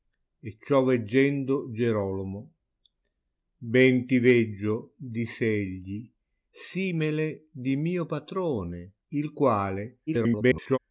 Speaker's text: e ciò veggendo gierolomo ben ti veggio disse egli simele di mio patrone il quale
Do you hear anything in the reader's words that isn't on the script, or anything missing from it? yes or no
yes